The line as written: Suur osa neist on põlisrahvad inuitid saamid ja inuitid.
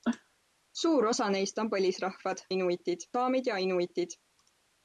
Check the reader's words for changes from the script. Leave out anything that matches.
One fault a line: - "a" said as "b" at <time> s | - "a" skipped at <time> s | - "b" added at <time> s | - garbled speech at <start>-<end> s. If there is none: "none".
none